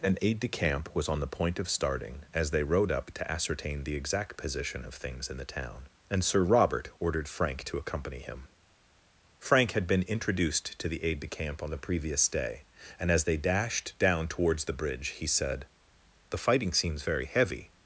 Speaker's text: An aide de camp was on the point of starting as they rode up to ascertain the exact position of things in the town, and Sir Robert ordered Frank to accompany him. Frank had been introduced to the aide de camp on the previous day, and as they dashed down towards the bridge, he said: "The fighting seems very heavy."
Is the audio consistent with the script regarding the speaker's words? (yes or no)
yes